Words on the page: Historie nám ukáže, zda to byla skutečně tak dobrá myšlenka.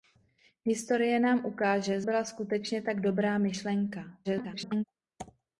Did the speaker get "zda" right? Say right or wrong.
wrong